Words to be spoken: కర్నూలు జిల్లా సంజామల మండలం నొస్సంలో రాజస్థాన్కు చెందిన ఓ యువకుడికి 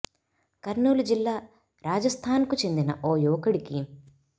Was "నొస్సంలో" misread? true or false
true